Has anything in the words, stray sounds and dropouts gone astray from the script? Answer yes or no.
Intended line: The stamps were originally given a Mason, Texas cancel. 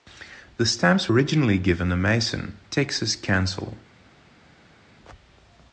yes